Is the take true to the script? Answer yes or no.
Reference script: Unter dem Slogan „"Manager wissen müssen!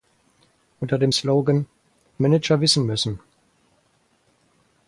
yes